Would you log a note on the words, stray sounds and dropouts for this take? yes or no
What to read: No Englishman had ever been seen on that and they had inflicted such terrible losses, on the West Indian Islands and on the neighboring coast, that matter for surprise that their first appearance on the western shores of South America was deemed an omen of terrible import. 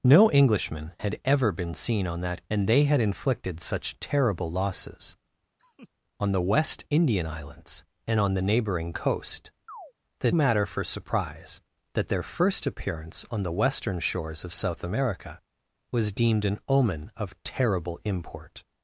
yes